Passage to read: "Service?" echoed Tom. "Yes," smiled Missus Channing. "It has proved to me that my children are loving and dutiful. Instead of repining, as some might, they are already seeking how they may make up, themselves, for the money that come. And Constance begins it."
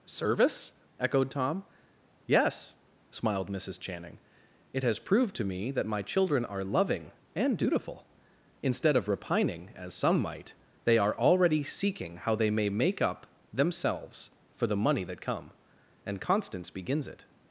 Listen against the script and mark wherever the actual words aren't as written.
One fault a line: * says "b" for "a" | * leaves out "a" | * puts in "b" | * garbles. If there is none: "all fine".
all fine